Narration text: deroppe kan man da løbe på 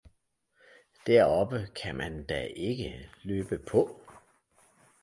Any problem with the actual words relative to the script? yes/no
yes